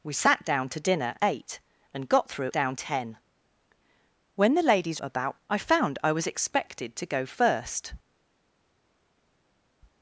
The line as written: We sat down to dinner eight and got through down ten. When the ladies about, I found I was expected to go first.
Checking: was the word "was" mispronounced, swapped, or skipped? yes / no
no